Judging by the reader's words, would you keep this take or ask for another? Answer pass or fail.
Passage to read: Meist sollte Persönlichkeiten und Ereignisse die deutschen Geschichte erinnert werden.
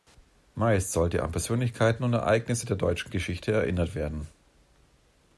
fail